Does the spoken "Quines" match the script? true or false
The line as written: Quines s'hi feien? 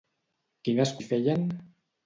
true